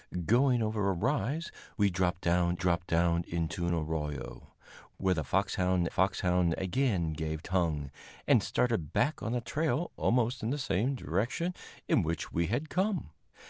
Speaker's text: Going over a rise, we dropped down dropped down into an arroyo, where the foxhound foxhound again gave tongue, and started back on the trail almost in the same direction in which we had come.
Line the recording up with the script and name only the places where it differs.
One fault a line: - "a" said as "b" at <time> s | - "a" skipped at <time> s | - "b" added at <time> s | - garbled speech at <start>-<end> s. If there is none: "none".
none